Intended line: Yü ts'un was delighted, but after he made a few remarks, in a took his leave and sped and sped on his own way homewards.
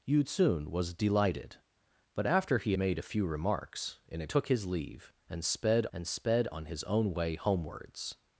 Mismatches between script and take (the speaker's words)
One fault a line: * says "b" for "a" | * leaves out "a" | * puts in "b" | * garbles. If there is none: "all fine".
all fine